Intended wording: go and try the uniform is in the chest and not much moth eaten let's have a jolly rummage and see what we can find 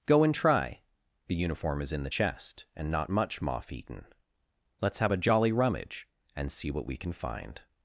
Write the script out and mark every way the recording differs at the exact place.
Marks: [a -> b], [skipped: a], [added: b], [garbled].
go and try the uniform is in the chest and not much moth eaten let's have a jolly rummage and see what we can find